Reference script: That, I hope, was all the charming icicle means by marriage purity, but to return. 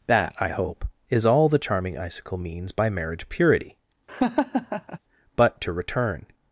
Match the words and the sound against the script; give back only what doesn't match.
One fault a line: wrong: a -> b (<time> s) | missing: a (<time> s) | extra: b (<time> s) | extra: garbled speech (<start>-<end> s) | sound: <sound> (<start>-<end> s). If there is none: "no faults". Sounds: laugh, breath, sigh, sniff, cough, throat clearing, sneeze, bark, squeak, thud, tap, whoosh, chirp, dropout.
wrong: was -> is (1.1 s)
sound: laugh (4.1-5.0 s)